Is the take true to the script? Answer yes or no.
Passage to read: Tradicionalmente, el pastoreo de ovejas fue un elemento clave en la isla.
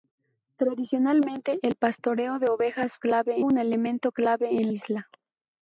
no